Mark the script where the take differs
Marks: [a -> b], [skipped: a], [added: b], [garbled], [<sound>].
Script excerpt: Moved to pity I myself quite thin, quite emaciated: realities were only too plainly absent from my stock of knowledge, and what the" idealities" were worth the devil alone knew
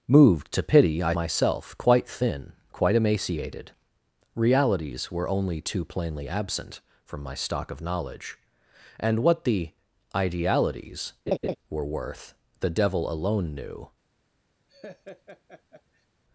Moved to pity I myself quite thin, quite emaciated: realities were only too plainly absent from my stock of knowledge, and what the" idealities" [laugh] were worth the devil alone knew [laugh]